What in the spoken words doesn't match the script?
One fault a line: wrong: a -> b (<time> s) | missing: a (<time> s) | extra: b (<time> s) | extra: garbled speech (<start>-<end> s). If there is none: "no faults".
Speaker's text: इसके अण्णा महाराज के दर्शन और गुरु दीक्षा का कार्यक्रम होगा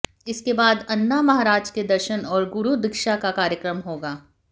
extra: बाद (0.5 s)